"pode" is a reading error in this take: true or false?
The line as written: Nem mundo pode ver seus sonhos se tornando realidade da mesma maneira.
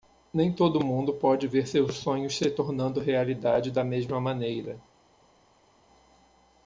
false